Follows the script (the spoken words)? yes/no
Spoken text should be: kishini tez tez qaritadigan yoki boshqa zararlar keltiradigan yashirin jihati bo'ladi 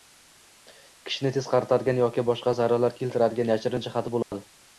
no